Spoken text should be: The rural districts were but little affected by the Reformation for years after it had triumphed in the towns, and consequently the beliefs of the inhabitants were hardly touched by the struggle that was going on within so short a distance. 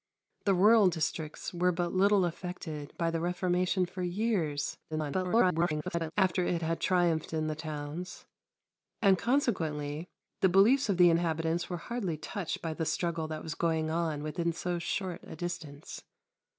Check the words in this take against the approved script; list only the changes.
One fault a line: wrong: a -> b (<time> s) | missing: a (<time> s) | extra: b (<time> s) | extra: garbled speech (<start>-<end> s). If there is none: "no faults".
extra: garbled speech (4.9-6.1 s)